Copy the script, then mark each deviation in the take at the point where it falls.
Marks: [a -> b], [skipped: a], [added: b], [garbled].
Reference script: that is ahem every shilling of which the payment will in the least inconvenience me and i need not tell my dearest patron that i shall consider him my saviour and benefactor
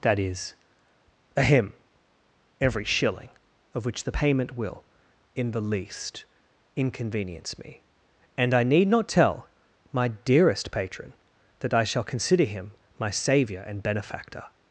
that is ahem every shilling of which the payment will in the least inconvenience me and i need not tell my dearest patron that i shall consider him my saviour and benefactor